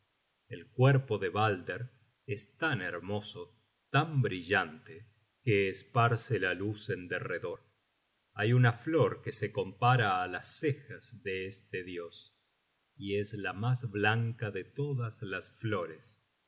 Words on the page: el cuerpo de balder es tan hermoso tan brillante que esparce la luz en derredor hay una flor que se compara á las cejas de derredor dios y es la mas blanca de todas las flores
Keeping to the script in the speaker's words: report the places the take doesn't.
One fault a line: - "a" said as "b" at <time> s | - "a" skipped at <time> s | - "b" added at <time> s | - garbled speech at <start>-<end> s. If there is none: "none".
- "derredor" said as "este" at 11.5 s